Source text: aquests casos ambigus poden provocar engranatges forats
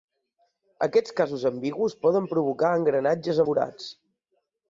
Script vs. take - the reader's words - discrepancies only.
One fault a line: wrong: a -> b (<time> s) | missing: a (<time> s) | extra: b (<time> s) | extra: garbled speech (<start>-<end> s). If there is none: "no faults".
no faults